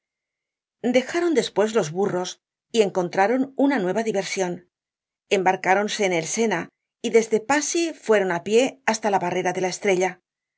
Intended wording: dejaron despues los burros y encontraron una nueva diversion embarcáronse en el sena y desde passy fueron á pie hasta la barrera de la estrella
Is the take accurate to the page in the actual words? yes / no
yes